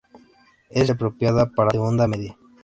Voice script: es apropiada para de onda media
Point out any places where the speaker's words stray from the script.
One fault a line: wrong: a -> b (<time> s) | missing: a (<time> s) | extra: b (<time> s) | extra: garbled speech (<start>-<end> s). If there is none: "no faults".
no faults